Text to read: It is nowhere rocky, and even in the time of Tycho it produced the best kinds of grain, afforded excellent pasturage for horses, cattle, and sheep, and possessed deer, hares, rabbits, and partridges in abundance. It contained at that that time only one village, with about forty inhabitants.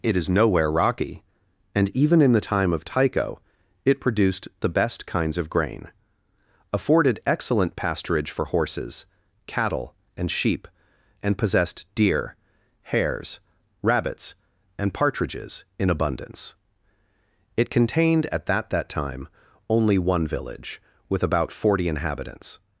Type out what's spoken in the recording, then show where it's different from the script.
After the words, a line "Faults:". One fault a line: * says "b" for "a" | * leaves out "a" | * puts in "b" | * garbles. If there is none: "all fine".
It is nowhere rocky, and even in the time of Tycho it produced the best kinds of grain, afforded excellent pasturage for horses, cattle, and sheep, and possessed deer, hares, rabbits, and partridges in abundance. It contained at that that time only one village, with about forty inhabitants.
Faults:
all fine